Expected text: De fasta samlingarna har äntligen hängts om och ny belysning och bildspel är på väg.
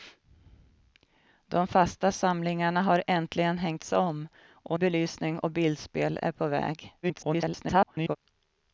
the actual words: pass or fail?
fail